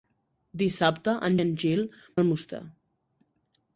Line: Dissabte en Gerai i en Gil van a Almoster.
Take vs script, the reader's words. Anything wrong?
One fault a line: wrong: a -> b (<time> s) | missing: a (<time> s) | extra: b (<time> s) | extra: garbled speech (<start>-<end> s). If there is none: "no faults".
missing: Gerai (1.4 s)
missing: van (1.9 s)